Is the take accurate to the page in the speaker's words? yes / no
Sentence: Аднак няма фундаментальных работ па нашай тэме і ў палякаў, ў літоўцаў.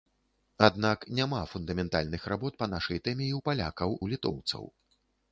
yes